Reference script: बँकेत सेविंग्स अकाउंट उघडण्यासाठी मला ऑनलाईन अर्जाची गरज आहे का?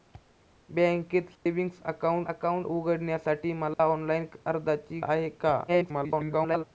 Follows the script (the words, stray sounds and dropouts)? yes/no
no